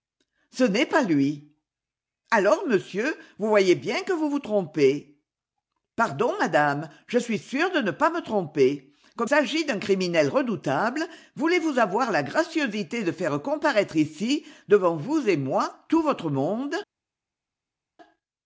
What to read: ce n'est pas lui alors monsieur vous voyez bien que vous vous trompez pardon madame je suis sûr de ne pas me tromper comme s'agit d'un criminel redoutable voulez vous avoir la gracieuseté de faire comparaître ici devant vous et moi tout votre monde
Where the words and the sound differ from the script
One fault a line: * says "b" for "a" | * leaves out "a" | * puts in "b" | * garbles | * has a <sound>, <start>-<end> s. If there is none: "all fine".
all fine